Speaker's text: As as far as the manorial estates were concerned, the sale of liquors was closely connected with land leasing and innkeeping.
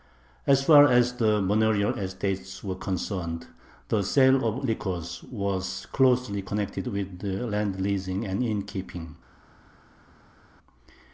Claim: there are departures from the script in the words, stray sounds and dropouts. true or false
true